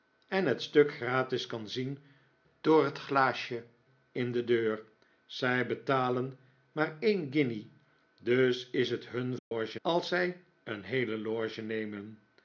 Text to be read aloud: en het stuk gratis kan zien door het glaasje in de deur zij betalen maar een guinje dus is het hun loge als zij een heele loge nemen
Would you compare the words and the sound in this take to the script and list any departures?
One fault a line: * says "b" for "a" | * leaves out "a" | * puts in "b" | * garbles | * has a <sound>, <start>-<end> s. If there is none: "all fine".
* has a dropout, 9.4-9.5 s